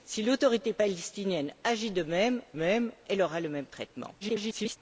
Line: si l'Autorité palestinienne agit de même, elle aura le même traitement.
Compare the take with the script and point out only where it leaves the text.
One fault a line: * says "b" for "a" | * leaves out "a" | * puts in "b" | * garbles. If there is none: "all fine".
* puts in "même"
* garbles